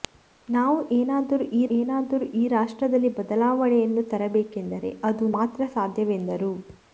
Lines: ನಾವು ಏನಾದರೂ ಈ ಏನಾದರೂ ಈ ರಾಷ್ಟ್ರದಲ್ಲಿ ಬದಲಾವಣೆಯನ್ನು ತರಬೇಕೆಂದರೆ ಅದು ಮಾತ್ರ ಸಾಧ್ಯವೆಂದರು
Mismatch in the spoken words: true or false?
false